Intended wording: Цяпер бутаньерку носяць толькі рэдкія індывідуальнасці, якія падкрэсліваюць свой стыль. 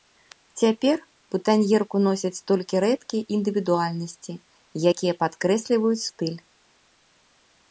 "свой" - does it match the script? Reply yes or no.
no